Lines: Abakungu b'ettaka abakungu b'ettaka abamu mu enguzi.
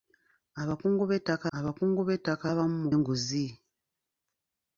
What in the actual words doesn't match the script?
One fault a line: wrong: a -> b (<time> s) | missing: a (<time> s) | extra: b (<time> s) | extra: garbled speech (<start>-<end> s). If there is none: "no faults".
no faults